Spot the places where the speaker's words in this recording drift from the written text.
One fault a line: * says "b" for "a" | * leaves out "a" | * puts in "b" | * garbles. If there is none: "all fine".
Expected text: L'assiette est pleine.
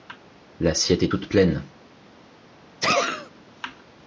* puts in "toute"